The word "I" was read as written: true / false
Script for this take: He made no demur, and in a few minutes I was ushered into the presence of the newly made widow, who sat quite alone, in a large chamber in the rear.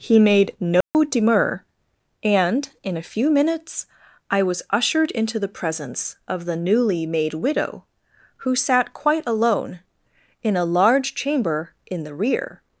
true